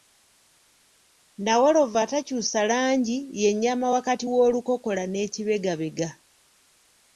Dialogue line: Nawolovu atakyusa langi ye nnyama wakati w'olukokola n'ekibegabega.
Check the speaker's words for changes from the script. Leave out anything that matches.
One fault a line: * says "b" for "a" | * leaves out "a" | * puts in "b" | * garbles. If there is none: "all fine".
all fine